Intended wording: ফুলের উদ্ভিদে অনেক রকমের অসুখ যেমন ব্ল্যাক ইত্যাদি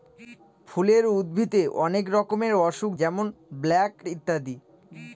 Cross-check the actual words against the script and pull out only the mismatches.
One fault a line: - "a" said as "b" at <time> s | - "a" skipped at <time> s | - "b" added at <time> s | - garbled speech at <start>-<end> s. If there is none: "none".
none